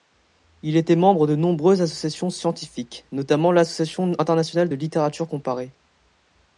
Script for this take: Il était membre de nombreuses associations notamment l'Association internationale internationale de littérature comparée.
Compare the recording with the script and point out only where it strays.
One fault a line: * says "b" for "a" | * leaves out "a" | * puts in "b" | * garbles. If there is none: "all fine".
* puts in "scientifiques"
* leaves out "internationale"